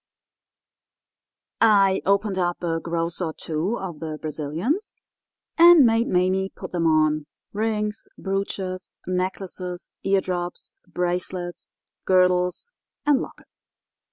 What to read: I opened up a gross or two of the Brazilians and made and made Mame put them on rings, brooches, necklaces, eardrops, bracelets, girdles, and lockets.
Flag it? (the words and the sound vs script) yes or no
yes